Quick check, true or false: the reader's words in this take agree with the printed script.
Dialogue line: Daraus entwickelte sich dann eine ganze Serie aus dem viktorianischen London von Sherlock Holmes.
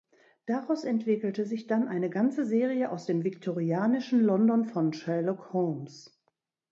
true